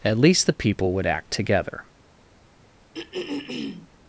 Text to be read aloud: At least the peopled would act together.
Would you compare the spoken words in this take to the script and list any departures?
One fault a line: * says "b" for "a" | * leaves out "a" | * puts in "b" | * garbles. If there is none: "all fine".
* says "people" for "peopled"